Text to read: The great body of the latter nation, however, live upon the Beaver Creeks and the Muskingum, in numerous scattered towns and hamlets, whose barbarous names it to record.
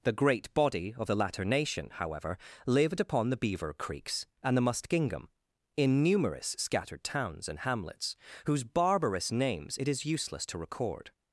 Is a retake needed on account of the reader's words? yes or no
yes